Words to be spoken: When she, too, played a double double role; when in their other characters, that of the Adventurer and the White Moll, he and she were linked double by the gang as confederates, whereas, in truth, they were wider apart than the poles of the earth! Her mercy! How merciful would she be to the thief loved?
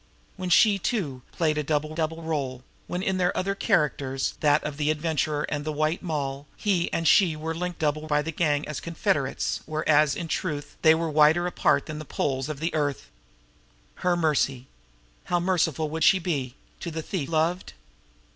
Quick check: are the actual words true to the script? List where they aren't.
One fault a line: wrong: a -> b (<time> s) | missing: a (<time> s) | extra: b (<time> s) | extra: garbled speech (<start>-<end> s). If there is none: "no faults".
no faults